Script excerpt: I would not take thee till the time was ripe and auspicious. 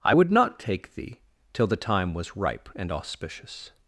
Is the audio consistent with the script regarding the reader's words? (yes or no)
yes